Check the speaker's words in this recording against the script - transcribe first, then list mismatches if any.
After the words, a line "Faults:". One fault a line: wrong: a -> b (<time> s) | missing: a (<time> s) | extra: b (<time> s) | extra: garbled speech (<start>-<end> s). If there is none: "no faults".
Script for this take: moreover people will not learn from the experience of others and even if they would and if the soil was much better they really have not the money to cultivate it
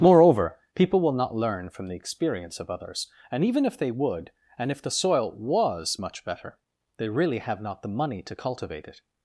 moreover people will not learn from the experience of others and even if they would and if the soil was much better they really have not the money to cultivate it
Faults:
no faults